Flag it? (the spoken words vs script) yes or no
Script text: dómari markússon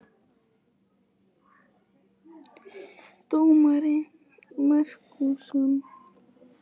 no